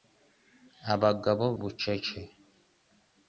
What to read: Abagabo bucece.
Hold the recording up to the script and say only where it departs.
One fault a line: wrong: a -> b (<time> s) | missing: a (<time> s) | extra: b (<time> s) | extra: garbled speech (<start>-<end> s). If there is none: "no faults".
no faults